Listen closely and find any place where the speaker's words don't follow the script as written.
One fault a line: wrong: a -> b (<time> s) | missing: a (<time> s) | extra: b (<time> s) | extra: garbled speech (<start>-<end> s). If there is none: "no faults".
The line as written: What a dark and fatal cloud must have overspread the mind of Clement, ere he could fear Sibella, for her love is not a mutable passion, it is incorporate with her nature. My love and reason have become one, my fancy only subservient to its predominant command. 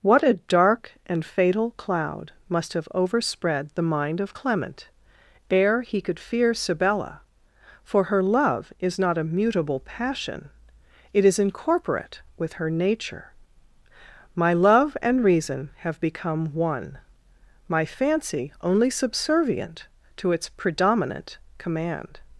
no faults